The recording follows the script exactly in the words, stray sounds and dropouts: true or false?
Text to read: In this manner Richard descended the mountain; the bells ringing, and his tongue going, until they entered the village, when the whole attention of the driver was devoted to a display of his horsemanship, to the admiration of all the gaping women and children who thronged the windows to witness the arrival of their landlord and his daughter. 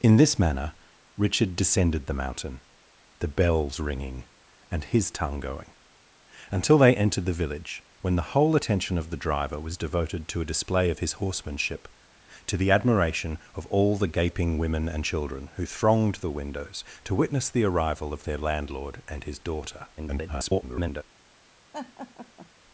false